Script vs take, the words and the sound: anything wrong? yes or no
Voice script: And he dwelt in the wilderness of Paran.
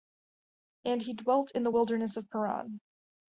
no